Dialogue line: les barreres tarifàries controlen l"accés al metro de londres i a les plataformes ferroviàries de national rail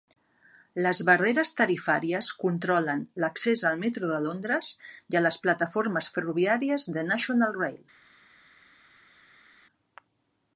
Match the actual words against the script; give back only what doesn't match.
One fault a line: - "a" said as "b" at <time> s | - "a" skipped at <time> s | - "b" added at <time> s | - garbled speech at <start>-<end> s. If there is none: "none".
none